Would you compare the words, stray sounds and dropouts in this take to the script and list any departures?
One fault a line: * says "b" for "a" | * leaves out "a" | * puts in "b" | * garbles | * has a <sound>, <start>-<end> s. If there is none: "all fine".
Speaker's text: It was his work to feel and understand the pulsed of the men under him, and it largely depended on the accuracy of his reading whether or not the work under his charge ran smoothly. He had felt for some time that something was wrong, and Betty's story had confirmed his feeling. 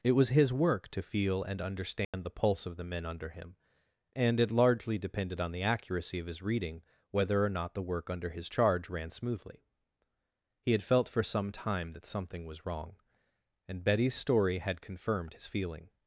* has a dropout, 2.0-2.1 s
* says "pulse" for "pulsed"